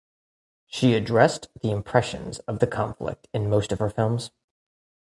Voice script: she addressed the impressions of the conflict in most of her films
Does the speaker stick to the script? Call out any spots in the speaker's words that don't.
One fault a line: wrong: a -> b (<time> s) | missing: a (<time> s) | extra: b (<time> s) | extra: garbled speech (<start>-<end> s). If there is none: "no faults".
no faults